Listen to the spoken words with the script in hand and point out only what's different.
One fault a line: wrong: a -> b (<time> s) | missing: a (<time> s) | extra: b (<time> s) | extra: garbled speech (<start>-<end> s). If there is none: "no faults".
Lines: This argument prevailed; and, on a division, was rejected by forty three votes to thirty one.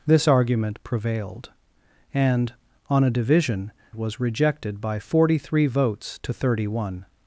no faults